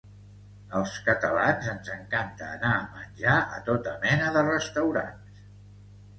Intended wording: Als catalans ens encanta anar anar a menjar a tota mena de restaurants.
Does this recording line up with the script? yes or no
no